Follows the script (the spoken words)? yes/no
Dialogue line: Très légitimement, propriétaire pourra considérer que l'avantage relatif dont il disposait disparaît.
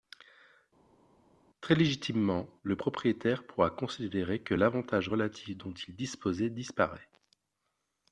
no